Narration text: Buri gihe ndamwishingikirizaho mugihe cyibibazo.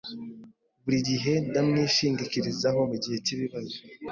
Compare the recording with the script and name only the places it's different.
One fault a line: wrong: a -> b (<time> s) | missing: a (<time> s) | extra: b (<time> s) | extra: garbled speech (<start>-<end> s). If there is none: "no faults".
no faults